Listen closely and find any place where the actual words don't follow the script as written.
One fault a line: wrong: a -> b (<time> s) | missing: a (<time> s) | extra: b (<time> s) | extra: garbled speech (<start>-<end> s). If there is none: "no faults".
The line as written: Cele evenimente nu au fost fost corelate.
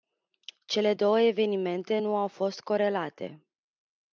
extra: două (0.9 s)
missing: fost (2.6 s)